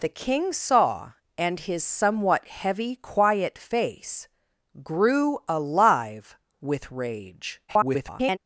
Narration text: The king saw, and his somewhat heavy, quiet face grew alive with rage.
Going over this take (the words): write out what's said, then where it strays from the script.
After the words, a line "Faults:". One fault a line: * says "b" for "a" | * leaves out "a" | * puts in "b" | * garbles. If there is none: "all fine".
The king saw, and his somewhat heavy, quiet face grew alive with rage. [garbled]
Faults:
* garbles